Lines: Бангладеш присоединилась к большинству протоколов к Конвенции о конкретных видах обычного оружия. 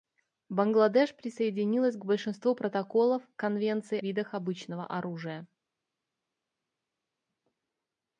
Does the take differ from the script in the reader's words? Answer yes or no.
yes